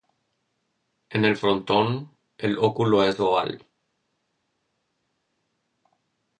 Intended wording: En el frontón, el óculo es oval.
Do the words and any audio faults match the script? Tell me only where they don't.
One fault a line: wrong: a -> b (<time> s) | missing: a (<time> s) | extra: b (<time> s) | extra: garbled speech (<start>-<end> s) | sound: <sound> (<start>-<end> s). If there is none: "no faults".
no faults